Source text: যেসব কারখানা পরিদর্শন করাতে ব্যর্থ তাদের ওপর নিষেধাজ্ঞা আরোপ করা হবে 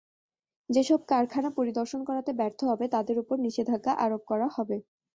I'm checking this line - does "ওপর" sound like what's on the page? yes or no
yes